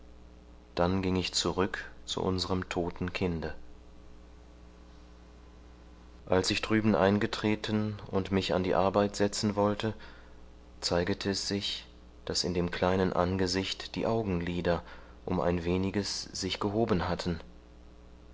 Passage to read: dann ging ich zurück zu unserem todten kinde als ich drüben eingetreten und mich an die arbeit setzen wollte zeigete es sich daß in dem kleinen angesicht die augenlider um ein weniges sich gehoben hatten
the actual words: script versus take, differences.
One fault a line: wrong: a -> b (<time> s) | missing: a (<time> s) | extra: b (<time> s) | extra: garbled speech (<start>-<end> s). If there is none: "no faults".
no faults